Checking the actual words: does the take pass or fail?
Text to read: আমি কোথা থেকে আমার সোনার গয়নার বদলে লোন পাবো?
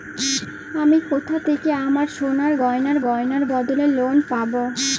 fail